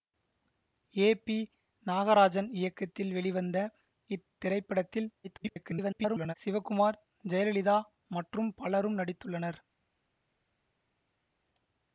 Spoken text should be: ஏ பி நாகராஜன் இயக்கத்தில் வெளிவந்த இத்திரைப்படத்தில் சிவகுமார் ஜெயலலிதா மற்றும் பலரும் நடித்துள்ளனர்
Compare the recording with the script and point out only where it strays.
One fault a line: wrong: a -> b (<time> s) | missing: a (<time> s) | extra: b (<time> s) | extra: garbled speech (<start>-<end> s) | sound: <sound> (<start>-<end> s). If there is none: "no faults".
extra: garbled speech (5.2-6.3 s)